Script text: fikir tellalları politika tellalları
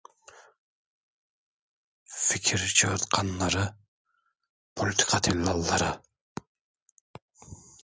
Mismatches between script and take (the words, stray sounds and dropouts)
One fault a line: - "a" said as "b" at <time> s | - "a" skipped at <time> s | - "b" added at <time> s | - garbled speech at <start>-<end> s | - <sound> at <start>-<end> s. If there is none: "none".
- "tellalları" said as "çığırtkanları" at 2.7 s